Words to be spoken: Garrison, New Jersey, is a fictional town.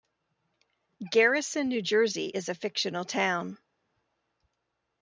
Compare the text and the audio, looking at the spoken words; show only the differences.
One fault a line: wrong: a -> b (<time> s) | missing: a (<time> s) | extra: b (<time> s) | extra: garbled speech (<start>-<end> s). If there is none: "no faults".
no faults